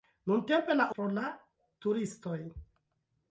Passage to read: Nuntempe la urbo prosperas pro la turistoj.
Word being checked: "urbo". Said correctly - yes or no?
no